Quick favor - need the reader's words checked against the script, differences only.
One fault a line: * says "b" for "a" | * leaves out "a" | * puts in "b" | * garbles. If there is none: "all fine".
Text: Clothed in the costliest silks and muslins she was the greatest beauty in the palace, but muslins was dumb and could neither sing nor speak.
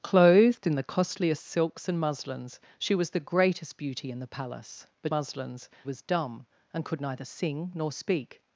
all fine